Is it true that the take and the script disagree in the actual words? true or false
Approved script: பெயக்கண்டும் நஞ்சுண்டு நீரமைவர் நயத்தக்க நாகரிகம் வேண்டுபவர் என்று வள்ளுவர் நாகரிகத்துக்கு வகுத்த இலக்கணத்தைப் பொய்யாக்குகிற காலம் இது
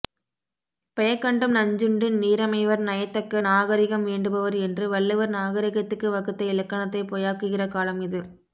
false